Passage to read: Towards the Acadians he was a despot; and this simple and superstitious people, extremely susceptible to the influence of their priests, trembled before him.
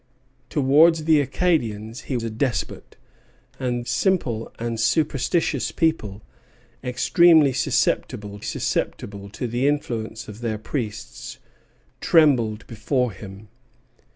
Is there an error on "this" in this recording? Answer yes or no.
yes